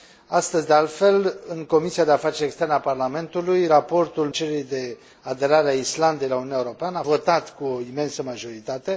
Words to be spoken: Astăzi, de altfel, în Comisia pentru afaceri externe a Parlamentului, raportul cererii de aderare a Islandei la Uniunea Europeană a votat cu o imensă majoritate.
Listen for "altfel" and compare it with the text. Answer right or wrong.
right